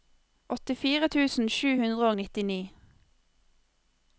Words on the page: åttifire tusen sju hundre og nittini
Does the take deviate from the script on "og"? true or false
false